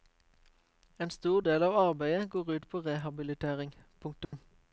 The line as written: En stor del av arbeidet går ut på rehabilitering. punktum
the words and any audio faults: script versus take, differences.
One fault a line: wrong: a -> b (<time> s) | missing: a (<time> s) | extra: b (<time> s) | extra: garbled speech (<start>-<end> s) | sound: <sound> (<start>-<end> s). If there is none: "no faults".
sound: dropout (4.2-4.3 s)